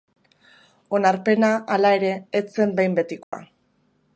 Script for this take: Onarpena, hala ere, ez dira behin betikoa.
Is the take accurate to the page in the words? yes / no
no